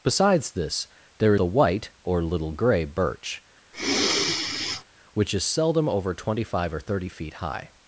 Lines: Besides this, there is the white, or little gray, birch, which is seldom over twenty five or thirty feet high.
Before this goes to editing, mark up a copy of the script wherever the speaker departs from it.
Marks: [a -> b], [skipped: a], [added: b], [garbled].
Besides this, there [skipped: is] the white, or little gray, birch, which is seldom over twenty five or thirty feet high.